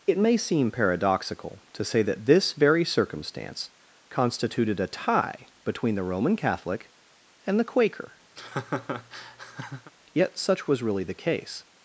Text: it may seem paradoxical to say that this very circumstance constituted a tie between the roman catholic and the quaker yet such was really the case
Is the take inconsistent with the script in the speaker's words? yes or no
no